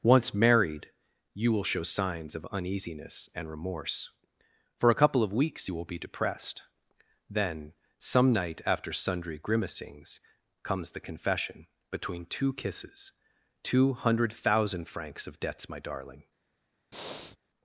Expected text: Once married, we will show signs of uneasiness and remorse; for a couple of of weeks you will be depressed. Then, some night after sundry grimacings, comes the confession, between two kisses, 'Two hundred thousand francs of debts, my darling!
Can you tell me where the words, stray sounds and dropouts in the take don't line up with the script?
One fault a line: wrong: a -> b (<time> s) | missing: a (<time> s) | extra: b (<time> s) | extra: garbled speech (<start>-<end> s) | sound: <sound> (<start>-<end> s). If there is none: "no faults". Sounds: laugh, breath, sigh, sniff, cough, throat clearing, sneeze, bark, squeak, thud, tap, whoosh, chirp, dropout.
wrong: we -> you (1.4 s)
missing: of (5.3 s)
sound: breath (16.9-17.4 s)